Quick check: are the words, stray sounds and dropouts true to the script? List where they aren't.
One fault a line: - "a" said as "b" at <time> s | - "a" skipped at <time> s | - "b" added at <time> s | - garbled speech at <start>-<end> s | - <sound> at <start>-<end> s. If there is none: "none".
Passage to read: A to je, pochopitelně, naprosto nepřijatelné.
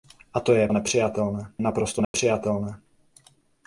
- "pochopitelně" said as "nepřijatelné" at 0.7 s
- dropout at 2.0-2.1 s